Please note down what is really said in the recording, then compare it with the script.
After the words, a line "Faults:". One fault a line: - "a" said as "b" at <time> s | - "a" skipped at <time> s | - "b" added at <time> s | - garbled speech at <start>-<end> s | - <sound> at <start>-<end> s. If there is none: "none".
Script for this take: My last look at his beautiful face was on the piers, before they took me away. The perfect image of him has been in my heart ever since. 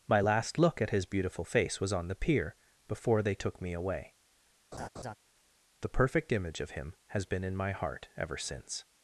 My last look at his beautiful face was on the pier, before they took me away. The perfect image of him has been in my heart ever since.
Faults:
- "piers" said as "pier" at 2.1 s
- laugh at 4.7-5.2 s